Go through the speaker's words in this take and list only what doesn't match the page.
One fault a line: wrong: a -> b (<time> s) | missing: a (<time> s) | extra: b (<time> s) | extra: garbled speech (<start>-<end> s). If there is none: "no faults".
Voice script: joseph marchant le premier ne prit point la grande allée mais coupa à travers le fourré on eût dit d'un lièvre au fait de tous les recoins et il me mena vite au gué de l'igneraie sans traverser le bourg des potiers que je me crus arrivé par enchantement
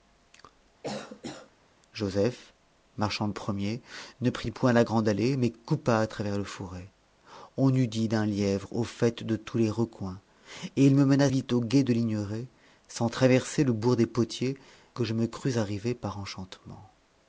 no faults